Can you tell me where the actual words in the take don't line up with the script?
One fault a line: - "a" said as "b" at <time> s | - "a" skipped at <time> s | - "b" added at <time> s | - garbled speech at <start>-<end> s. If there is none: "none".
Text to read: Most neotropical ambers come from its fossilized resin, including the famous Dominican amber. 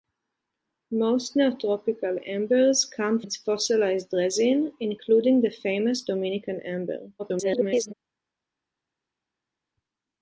- "from" skipped at 3.2 s
- garbled speech at 7.2-7.9 s